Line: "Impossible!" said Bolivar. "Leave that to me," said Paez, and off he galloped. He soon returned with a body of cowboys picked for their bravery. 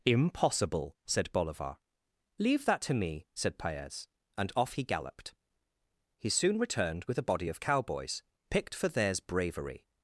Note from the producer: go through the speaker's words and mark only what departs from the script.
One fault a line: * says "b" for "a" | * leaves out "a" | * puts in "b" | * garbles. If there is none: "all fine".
* says "theirs" for "their"